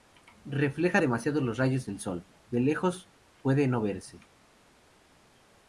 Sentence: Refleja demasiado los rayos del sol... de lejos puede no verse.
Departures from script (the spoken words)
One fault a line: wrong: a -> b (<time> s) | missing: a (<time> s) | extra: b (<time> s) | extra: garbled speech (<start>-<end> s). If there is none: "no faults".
no faults